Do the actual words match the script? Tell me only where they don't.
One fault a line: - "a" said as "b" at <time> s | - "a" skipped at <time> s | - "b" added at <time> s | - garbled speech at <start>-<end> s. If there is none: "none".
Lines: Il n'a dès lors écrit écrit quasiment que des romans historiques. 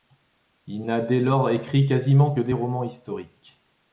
- "écrit" skipped at 1.9 s